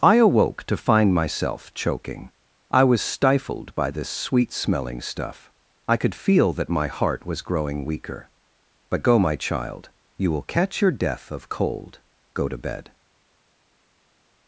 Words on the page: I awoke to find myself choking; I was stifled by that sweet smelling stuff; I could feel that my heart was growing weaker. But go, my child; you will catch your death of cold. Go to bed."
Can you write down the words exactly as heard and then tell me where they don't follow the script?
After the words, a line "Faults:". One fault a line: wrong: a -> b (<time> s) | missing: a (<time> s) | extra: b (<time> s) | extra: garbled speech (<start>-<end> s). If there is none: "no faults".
I awoke to find myself choking; I was stifled by this sweet smelling stuff; I could feel that my heart was growing weaker. But go, my child; you will catch your death of cold. Go to bed."
Faults:
wrong: that -> this (3.9 s)